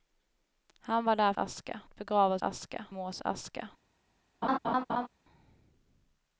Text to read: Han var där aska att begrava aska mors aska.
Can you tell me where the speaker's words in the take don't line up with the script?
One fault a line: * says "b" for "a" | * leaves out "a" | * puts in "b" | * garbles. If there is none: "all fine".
all fine